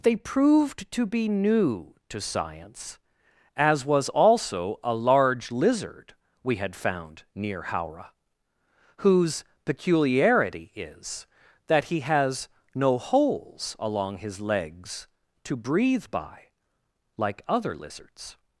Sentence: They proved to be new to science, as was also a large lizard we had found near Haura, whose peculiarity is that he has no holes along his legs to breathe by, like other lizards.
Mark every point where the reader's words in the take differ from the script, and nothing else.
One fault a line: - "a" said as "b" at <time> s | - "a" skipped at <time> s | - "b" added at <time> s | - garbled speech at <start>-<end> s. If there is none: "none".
none